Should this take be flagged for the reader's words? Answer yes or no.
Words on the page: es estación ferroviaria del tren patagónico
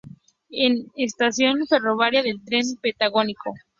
no